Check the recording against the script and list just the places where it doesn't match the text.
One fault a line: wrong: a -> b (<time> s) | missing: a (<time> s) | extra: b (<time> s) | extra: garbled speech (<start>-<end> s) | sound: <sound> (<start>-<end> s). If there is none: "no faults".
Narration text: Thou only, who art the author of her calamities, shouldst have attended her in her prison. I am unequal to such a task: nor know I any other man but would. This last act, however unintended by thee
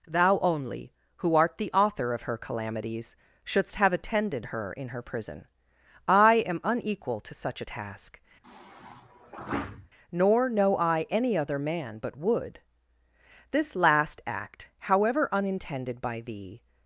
sound: sigh (8.4-9.9 s)